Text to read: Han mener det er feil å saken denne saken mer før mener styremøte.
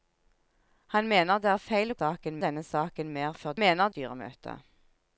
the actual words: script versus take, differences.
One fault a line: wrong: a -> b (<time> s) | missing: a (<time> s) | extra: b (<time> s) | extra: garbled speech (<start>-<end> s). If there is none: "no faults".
no faults